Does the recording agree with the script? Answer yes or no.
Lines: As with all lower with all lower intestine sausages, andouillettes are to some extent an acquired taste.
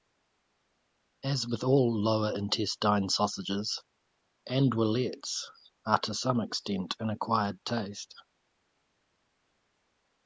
no